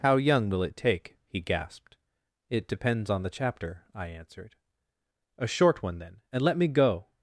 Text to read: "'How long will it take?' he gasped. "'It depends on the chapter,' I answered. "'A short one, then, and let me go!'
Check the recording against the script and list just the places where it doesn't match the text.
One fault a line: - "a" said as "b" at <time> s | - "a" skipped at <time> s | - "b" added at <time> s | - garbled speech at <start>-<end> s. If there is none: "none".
- "long" said as "young" at 0.2 s